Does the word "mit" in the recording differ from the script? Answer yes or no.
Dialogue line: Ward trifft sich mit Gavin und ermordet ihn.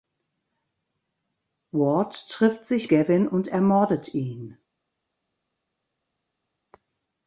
yes